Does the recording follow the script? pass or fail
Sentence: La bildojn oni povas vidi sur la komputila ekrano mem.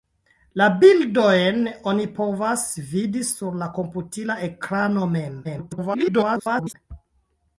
fail